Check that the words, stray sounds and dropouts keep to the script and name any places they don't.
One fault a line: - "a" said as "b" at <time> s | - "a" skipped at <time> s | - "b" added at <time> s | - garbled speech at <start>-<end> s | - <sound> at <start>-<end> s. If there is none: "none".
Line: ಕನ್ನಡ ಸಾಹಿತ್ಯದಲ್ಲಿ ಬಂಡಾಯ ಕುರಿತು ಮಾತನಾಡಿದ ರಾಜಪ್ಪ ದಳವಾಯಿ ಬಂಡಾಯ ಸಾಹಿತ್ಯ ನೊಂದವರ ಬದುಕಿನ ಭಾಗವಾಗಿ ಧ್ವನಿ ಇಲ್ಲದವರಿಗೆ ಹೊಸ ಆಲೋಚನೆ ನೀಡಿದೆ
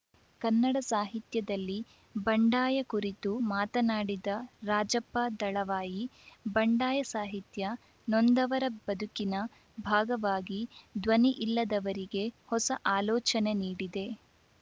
none